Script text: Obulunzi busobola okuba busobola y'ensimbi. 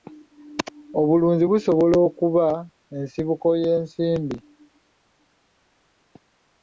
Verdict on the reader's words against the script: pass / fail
fail